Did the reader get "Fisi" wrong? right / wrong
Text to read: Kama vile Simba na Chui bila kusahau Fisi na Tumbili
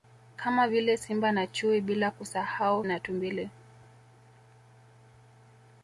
wrong